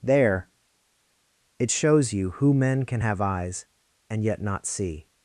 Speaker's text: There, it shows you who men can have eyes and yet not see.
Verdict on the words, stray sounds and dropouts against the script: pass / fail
pass